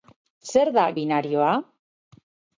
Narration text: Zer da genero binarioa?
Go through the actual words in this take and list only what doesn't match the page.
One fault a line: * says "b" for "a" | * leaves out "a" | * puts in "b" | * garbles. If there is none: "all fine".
* leaves out "genero"